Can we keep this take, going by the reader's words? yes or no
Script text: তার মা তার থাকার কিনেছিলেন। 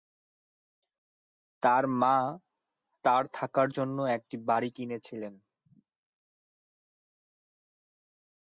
no